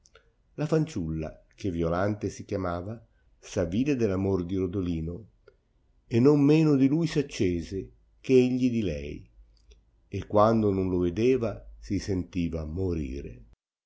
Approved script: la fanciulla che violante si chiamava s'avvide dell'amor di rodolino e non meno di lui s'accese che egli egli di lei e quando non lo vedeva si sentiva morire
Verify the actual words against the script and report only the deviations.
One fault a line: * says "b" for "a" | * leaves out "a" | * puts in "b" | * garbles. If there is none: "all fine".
* leaves out "egli"